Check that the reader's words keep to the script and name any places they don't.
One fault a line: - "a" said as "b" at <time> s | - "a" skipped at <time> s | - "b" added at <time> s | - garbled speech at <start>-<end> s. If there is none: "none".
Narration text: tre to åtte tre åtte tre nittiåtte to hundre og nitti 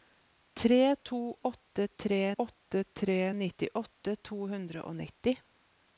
none